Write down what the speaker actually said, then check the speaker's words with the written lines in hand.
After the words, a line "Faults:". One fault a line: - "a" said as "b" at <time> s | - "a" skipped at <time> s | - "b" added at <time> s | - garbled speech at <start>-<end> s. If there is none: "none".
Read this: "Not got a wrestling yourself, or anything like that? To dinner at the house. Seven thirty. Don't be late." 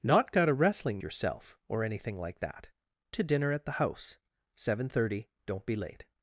"Not got a wrestling yourself, or anything like that? To dinner at the house. Seven thirty. Don't be late."
Faults:
none